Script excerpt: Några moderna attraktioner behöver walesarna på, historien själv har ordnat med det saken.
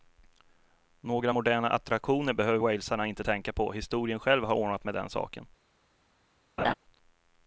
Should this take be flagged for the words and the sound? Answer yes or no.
yes